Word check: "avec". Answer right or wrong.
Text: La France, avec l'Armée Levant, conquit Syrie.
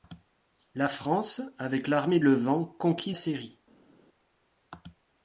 right